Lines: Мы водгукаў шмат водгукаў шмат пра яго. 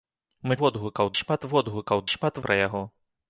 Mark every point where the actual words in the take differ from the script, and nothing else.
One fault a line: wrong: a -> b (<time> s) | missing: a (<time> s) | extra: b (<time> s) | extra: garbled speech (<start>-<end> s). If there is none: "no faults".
no faults